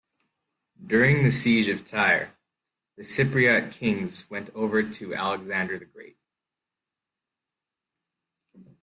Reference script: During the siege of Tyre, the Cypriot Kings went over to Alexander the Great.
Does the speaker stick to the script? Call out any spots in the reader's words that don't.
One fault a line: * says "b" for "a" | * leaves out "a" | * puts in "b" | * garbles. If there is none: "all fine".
all fine